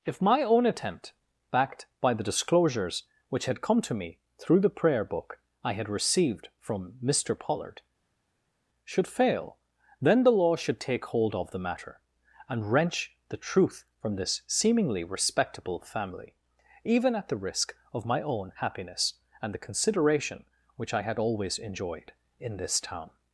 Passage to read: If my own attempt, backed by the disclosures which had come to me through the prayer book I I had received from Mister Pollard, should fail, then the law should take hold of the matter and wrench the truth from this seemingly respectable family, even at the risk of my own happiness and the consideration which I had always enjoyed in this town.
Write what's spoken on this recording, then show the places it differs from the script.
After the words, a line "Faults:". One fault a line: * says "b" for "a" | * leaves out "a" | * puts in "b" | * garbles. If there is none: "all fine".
If my own attempt, backed by the disclosures which had come to me through the prayer book I had received from Mister Pollard, should fail, then the law should take hold of the matter and wrench the truth from this seemingly respectable family, even at the risk of my own happiness and the consideration which I had always enjoyed in this town.
Faults:
* leaves out "I"